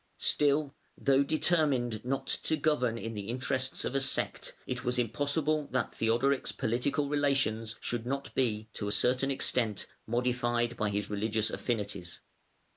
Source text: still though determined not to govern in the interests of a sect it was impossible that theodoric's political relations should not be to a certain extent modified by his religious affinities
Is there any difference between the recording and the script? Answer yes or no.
no